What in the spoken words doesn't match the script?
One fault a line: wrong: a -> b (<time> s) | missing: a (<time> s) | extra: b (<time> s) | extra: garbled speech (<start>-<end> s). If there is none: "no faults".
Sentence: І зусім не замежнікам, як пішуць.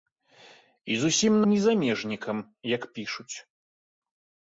no faults